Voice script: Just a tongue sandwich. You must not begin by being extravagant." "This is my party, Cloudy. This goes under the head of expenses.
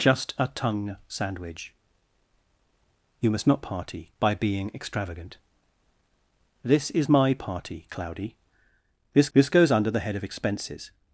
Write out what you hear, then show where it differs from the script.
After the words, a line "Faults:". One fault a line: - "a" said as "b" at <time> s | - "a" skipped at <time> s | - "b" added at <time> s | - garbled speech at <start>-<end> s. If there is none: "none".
Just a tongue sandwich. You must not party by being extravagant." "This is my party, Cloudy. This this goes under the head of expenses.
Faults:
- "begin" said as "party" at 3.6 s
- "this" added at 9.3 s